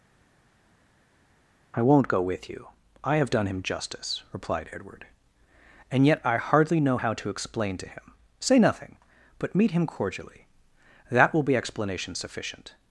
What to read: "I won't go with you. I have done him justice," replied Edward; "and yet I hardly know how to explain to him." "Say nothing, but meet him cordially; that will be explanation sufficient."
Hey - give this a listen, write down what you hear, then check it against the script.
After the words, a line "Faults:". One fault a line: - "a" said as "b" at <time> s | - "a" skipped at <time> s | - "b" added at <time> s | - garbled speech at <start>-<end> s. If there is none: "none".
"I won't go with you. I have done him justice," replied Edward; "and yet I hardly know how to explain to him." "Say nothing, but meet him cordially; that will be explanation sufficient."
Faults:
none